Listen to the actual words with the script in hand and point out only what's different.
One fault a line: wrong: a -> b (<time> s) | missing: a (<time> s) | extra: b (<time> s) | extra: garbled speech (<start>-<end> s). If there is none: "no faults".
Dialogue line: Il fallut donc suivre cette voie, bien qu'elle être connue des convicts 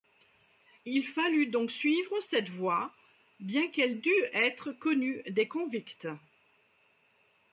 extra: dût (4.0 s)